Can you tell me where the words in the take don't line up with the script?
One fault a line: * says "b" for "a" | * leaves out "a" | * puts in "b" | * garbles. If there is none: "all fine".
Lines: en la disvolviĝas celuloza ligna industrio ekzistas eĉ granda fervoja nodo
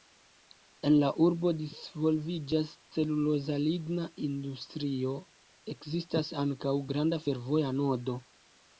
* puts in "urbo"
* says "ankaŭ" for "eĉ"